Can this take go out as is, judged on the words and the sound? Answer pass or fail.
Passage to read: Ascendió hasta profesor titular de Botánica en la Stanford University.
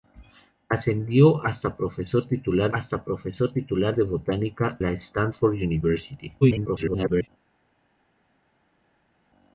fail